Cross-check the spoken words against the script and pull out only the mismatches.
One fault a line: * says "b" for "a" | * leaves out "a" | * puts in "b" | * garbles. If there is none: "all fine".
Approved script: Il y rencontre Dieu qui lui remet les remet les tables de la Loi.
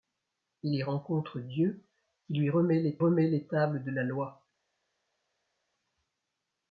all fine